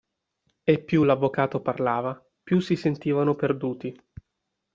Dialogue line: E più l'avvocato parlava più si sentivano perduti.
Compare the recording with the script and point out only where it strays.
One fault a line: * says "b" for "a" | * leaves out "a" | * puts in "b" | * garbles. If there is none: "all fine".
all fine